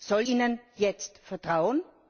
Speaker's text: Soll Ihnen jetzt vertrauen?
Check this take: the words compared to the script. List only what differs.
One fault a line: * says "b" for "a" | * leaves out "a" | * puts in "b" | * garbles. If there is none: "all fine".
all fine